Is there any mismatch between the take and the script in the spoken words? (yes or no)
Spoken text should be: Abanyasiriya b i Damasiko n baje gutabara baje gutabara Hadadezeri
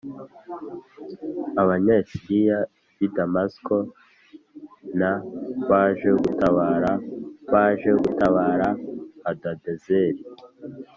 no